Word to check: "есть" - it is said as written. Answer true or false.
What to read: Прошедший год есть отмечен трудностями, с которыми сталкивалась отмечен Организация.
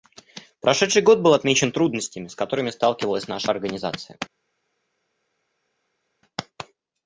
false